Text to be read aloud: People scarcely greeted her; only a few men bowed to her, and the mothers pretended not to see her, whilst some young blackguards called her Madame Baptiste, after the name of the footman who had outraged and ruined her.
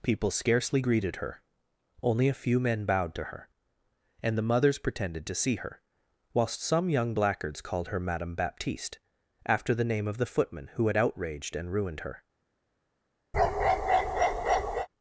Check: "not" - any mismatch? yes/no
yes